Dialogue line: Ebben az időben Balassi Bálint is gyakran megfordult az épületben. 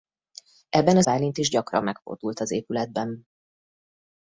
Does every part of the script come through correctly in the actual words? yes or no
no